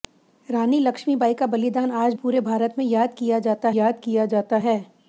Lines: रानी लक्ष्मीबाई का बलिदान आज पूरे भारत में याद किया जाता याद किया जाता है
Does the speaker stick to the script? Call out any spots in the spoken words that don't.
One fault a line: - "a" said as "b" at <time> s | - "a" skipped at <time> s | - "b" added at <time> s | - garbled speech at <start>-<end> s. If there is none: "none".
none